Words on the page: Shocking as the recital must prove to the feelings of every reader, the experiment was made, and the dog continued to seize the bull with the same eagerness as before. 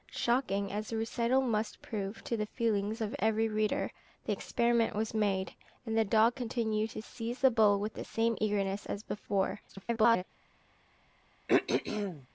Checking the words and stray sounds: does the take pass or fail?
fail